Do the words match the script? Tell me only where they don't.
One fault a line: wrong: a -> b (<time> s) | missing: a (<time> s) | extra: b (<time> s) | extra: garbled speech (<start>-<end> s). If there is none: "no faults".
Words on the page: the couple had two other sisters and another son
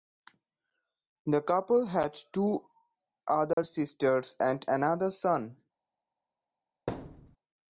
no faults